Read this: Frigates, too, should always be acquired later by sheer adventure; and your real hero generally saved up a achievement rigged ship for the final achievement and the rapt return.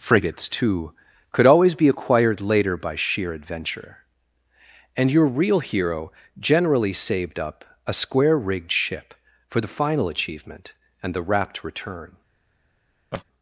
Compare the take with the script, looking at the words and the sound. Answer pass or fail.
fail